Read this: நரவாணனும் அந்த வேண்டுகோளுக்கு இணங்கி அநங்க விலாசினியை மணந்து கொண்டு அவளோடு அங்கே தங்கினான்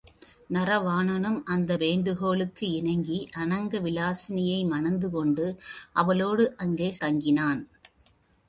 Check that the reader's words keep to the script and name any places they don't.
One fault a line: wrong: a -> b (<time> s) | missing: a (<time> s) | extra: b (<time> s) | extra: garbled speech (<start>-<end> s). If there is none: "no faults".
no faults